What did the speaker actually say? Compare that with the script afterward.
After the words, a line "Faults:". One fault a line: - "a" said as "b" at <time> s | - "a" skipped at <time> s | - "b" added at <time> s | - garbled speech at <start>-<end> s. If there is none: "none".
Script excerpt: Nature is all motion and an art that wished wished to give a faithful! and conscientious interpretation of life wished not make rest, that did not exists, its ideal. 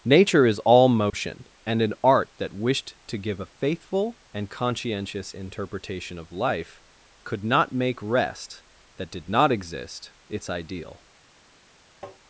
Nature is all motion and an art that wished to give a faithful! and conscientious interpretation of life could not make rest, that did not exist, its ideal.
Faults:
- "wished" skipped at 3.0 s
- "wished" said as "could" at 7.2 s
- "exists" said as "exist" at 9.5 s